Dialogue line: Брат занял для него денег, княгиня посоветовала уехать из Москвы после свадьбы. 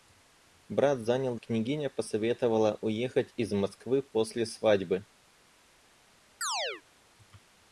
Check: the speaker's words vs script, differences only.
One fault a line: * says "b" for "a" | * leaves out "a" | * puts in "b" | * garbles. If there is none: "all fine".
* leaves out "для него денег"